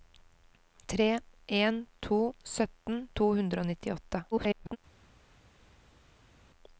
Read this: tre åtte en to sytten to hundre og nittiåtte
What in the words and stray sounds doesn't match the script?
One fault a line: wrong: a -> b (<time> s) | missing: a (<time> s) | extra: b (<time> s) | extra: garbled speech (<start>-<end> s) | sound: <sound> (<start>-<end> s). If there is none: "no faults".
missing: åtte (1.2 s)
extra: garbled speech (4.3-4.8 s)